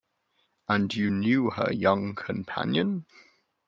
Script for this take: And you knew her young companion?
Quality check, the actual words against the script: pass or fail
pass